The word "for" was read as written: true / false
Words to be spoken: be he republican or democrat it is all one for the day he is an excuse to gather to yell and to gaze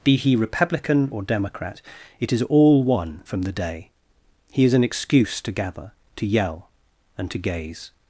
false